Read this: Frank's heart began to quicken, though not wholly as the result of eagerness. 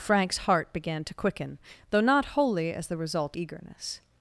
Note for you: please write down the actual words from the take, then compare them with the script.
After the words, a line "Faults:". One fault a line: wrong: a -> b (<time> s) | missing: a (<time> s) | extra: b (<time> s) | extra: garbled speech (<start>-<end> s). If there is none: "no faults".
Frank's heart began to quicken, though not wholly as the result eagerness.
Faults:
missing: of (3.4 s)